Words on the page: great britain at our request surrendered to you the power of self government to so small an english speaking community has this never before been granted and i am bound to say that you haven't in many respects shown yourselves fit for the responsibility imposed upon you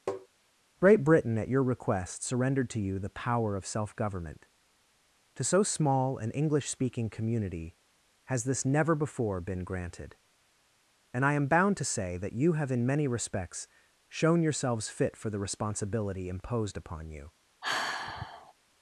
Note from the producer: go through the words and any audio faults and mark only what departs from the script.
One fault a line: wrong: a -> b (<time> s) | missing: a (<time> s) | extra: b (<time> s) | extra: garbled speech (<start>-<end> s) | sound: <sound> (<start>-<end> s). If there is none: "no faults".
sound: tap (0.1-0.3 s)
wrong: our -> your (1.5 s)
wrong: haven't -> have (12.5 s)
sound: sigh (17.6-18.5 s)